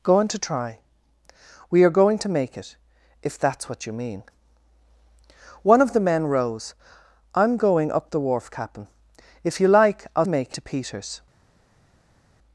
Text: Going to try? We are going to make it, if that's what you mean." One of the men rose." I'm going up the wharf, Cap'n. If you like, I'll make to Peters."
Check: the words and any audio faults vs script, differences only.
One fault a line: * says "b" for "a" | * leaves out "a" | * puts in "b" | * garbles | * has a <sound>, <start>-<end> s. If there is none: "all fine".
all fine